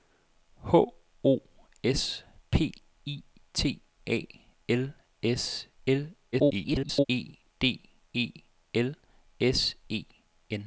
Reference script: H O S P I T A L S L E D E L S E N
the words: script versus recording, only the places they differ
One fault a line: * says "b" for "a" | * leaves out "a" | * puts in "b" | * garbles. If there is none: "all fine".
* garbles